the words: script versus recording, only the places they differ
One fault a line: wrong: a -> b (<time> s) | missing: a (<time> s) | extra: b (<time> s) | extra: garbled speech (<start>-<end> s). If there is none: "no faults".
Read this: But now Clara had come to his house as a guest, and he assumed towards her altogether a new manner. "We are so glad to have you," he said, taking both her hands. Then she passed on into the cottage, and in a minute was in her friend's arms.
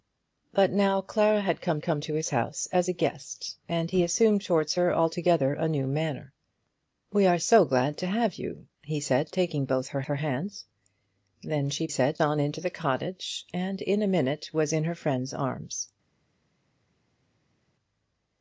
extra: come (1.8 s)
extra: her (10.0 s)
wrong: passed -> said (11.9 s)